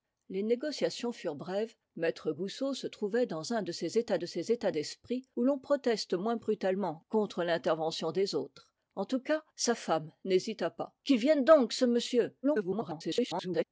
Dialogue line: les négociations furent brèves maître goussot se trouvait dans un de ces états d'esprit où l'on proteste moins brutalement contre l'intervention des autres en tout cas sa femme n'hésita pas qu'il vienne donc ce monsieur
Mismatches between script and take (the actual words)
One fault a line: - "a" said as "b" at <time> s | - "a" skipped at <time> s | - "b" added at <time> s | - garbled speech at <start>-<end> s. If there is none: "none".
- "de ces états" added at 4.2 s
- garbled speech at 12.4-13.6 s